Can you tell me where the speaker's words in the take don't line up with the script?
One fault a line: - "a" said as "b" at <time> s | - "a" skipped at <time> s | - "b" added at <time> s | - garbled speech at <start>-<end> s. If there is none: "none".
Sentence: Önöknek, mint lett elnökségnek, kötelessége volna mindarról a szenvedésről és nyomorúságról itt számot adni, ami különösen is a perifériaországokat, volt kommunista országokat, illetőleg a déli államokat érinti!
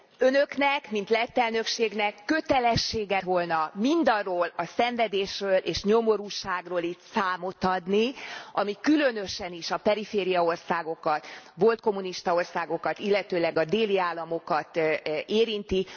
none